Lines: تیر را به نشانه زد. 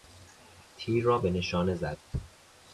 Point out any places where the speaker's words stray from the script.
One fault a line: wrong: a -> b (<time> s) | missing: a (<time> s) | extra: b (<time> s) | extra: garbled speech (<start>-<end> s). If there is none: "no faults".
no faults